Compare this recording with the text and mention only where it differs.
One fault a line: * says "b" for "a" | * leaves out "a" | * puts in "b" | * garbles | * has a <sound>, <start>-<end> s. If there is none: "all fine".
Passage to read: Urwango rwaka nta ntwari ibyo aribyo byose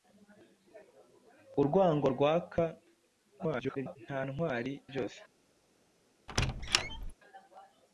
* garbles
* leaves out "ibyo aribyo"
* has a squeak, 6.3-7.1 s